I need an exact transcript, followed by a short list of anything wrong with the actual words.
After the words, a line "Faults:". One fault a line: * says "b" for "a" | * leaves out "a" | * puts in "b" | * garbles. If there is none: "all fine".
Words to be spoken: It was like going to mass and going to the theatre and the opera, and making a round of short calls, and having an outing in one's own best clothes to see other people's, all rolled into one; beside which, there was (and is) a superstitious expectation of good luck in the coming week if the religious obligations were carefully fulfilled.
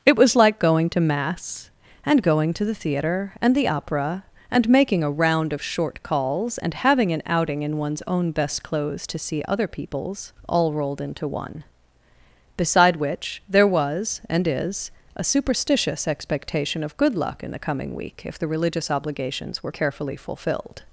It was like going to mass and going to the theatre and the opera, and making a round of short calls, and having an outing in one's own best clothes to see other people's, all rolled into one; beside which, there was (and is) a superstitious expectation of good luck in the coming week if the religious obligations were carefully fulfilled.
Faults:
all fine